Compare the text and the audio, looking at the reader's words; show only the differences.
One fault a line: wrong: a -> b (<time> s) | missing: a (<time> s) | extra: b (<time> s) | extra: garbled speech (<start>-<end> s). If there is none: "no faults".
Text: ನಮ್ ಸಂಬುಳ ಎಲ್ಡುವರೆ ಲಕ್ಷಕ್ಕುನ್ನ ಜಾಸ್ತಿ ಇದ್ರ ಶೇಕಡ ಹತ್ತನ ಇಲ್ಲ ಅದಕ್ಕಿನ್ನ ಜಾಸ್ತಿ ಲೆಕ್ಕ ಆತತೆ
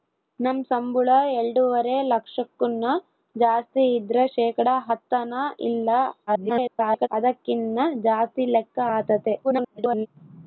extra: garbled speech (6.3-7.1 s)
extra: garbled speech (9.4-10.1 s)